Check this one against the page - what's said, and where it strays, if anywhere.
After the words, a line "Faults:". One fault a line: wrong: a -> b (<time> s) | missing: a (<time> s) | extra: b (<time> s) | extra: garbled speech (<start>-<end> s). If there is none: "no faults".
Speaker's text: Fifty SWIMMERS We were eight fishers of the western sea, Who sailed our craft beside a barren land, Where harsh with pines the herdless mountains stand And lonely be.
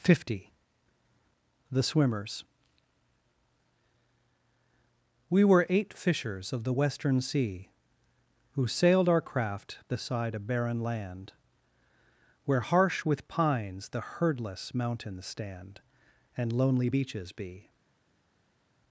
Fifty THE SWIMMERS We were eight fishers of the western sea, Who sailed our craft beside a barren land, Where harsh with pines the herdless mountains stand And lonely beaches be.
Faults:
extra: THE (1.7 s)
extra: beaches (16.8 s)